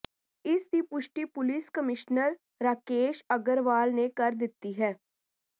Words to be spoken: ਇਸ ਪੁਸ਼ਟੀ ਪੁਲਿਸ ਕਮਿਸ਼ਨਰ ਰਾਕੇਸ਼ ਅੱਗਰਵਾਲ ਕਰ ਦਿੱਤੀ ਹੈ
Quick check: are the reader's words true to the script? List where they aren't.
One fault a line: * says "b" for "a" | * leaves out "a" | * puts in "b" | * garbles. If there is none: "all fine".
* puts in "ਦੀ"
* puts in "ਨੇ"